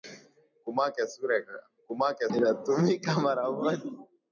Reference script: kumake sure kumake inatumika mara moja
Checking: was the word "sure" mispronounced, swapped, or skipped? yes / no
no